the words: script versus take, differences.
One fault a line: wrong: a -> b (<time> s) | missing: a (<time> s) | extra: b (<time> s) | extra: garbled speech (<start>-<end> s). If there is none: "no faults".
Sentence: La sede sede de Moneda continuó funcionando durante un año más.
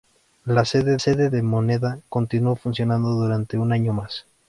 no faults